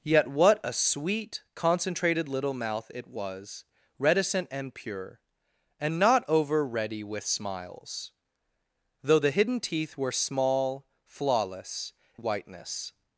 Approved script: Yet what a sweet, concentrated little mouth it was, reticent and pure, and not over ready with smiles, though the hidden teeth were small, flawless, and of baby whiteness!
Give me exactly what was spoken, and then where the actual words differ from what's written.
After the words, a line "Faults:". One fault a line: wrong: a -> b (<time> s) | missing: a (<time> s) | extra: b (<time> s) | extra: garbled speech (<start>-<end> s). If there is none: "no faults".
Yet what a sweet, concentrated little mouth it was, reticent and pure, and not over ready with smiles, though the hidden teeth were small, flawless, whiteness!
Faults:
missing: and of baby (11.9 s)